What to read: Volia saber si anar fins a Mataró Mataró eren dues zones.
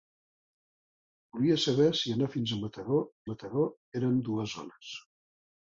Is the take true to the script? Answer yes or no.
yes